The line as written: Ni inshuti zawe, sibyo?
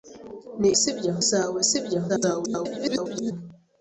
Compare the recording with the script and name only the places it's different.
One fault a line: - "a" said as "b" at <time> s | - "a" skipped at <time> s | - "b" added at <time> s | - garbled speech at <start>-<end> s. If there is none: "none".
- "inshuti" said as "sibyo" at 0.8 s
- garbled speech at 2.1-3.3 s